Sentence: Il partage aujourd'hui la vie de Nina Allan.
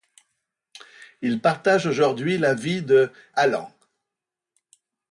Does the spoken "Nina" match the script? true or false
false